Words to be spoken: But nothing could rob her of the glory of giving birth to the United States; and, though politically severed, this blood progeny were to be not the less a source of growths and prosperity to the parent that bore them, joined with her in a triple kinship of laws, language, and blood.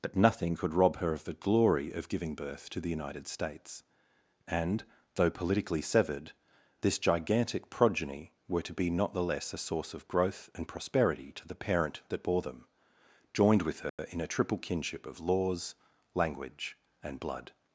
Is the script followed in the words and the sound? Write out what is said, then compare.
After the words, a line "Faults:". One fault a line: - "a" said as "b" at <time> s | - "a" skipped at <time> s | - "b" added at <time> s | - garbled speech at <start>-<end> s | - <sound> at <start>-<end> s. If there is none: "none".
But nothing could rob her of the glory of giving birth to the United States; and, though politically severed, this gigantic progeny were to be not the less a source of growth and prosperity to the parent that bore them, joined with her in a triple kinship of laws, language, and blood.
Faults:
- "blood" said as "gigantic" at 7.0 s
- "growths" said as "growth" at 10.1 s
- dropout at 13.9-14.0 s